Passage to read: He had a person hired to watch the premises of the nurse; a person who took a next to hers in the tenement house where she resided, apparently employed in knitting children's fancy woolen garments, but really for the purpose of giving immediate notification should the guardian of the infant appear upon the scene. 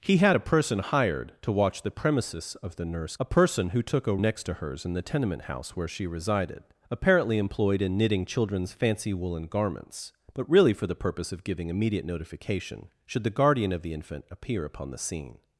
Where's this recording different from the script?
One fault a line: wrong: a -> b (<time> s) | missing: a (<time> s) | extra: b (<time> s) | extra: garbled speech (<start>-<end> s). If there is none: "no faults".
no faults